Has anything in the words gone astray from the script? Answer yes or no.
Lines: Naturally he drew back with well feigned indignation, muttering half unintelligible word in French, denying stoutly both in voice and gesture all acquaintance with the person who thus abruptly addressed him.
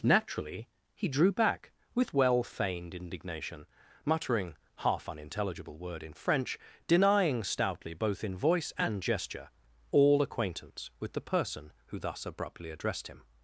no